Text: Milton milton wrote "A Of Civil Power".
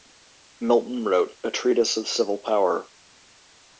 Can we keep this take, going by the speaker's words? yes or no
no